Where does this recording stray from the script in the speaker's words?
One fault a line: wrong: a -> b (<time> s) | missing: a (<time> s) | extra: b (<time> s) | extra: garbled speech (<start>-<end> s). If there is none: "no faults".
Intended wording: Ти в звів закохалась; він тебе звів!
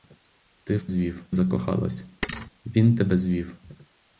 no faults